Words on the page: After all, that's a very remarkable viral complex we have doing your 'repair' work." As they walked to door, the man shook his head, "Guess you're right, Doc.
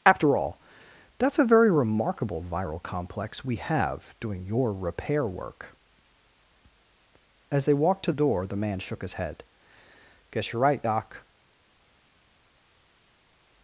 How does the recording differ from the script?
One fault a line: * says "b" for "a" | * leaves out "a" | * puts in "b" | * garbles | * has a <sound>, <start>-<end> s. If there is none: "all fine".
all fine